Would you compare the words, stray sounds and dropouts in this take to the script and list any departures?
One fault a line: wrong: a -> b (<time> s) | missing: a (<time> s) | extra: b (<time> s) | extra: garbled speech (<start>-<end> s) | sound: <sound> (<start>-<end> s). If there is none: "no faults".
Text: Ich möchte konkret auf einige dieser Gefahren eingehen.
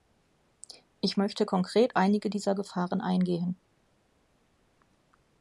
missing: auf (2.0 s)